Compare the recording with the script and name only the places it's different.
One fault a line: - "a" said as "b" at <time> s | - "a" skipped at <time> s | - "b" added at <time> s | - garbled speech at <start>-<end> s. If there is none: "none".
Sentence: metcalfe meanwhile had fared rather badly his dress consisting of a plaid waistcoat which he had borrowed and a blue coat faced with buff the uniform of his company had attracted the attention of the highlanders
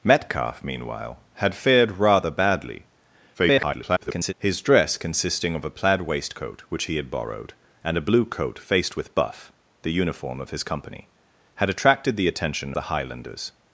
- garbled speech at 3.3-4.3 s
- "of" skipped at 12.7 s